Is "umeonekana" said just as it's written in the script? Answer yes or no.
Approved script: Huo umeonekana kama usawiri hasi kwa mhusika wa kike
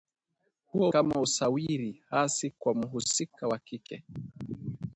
no